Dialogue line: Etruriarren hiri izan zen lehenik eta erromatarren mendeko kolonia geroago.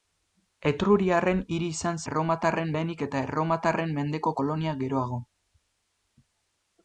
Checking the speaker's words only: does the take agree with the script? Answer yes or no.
no